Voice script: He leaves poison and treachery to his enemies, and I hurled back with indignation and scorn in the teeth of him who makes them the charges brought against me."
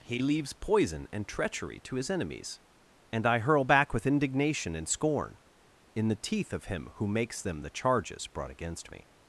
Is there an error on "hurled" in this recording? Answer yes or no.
yes